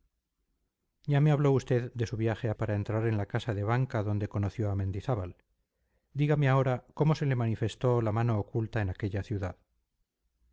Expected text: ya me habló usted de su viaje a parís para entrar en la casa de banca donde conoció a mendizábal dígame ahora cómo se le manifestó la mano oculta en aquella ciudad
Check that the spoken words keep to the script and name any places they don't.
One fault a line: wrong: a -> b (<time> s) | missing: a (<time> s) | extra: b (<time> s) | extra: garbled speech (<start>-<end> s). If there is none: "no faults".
missing: parís (2.6 s)